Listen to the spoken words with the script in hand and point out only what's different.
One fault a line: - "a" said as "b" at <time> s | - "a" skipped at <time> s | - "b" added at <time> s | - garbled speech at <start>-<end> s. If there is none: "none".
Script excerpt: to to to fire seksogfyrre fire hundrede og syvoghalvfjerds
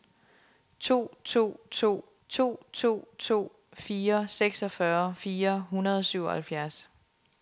- "to to to" added at 2.3 s